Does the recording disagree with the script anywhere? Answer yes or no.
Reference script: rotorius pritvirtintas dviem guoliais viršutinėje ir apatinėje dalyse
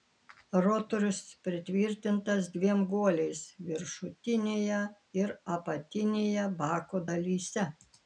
yes